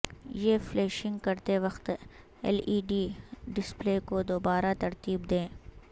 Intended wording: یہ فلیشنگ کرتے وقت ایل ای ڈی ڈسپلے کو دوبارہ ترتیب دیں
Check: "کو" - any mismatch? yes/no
no